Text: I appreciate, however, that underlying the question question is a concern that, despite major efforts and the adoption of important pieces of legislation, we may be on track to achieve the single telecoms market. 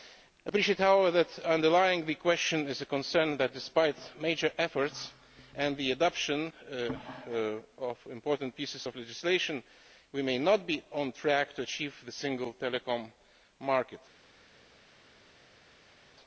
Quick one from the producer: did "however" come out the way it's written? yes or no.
yes